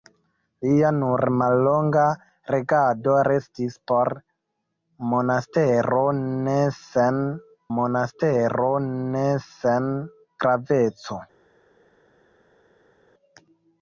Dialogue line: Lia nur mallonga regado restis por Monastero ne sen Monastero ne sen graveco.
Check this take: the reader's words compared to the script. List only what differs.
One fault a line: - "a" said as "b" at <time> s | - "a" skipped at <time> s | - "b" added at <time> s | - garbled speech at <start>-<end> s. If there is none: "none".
none